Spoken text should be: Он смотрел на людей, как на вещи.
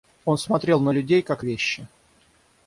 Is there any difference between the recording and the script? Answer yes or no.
yes